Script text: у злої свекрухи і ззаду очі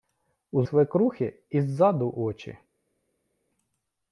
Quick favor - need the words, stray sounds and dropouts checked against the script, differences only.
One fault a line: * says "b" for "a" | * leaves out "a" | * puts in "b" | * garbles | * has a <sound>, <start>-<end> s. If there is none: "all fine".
* leaves out "злої"